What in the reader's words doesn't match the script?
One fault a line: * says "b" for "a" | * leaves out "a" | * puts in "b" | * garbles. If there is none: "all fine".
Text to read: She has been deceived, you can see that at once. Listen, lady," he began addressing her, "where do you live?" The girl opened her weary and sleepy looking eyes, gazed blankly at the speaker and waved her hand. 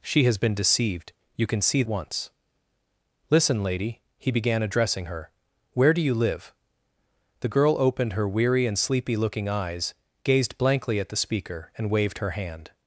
* leaves out "that at"